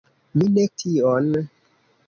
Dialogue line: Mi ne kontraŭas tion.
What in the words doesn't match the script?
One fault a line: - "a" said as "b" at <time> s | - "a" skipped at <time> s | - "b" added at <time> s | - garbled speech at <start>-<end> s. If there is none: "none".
- "kontraŭas" skipped at 0.6 s